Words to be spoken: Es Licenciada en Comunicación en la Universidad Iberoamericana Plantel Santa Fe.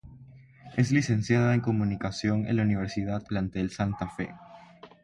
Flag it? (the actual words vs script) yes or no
yes